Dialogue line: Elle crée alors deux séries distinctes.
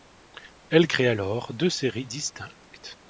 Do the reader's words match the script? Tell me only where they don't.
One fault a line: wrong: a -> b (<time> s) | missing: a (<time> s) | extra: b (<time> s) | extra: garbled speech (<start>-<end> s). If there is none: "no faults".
no faults